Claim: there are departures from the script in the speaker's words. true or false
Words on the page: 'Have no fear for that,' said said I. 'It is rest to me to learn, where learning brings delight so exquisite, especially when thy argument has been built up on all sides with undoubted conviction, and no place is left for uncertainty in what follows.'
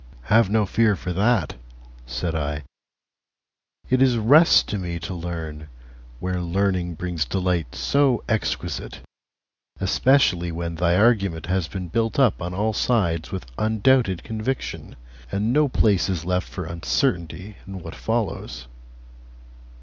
true